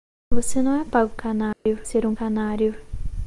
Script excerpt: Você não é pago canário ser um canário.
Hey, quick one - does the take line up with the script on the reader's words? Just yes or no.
yes